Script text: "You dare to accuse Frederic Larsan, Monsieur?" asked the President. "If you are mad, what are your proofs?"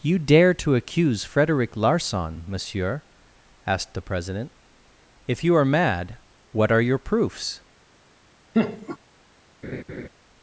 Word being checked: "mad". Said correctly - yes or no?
yes